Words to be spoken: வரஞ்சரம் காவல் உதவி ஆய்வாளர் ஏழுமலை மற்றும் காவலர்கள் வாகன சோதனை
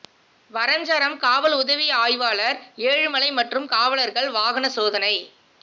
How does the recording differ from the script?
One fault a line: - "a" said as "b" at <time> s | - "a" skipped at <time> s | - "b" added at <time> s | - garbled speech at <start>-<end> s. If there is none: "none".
none